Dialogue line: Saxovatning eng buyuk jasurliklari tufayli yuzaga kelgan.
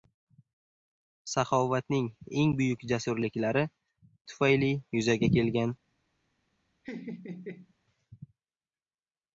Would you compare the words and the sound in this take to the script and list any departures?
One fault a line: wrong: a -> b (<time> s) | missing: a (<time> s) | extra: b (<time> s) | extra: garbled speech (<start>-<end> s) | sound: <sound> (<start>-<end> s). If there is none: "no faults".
sound: laugh (6.8-7.7 s)